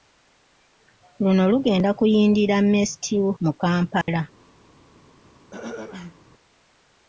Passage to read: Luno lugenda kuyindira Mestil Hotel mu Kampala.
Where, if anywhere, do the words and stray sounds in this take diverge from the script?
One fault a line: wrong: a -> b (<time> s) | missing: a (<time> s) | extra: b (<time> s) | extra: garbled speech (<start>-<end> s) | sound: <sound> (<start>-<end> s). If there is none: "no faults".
missing: Hotel (3.2 s)
sound: dropout (4.0-4.1 s)
sound: throat clearing (5.5-6.2 s)